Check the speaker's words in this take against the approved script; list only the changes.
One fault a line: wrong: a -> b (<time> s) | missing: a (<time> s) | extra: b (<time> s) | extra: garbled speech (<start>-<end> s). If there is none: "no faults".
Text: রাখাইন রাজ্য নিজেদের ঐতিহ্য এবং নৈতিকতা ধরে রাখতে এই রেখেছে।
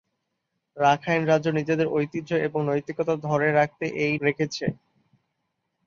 no faults